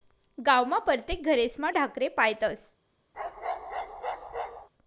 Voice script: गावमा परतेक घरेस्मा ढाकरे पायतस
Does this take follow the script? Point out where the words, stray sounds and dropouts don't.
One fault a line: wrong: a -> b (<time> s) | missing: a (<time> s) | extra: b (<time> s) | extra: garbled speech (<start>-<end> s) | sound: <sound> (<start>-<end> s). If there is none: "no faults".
sound: bark (3.1-4.7 s)